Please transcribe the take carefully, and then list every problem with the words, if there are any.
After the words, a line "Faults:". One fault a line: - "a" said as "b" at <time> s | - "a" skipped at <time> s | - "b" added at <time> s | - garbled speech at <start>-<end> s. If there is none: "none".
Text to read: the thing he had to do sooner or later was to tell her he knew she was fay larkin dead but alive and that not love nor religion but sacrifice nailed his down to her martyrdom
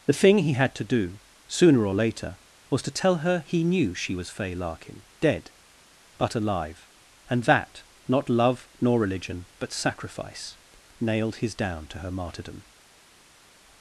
the thing he had to do sooner or later was to tell her he knew she was fay larkin dead but alive and that not love nor religion but sacrifice nailed his down to her martyrdom
Faults:
none